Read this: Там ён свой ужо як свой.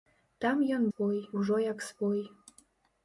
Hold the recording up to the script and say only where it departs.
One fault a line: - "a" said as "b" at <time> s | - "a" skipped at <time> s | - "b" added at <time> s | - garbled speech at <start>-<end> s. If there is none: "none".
none